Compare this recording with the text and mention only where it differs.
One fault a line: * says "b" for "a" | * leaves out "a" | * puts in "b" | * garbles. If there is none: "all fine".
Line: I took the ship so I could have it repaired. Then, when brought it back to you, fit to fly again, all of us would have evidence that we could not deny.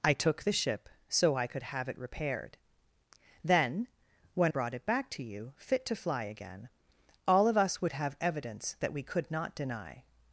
all fine